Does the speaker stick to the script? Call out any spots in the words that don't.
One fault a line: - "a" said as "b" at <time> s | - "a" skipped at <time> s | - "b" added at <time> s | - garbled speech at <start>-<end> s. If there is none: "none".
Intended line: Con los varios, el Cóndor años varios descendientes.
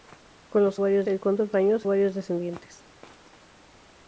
none